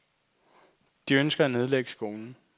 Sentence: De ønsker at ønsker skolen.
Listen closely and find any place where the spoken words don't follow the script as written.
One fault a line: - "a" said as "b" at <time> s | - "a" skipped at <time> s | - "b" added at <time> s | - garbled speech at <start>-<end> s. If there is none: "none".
- "ønsker" said as "nedlægge" at 1.5 s